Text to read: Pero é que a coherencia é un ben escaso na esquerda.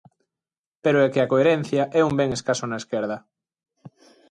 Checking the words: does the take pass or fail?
pass